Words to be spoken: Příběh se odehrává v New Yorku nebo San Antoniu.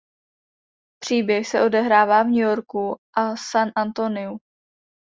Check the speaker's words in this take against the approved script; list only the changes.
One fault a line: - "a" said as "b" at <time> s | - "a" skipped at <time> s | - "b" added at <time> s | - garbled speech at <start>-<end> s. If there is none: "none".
- "nebo" said as "a" at 3.2 s